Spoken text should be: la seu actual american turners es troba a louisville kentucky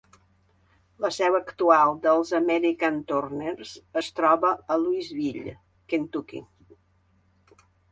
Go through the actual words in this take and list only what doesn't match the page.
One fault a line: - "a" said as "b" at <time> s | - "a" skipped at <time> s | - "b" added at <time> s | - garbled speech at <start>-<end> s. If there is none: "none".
- "dels" added at 2.1 s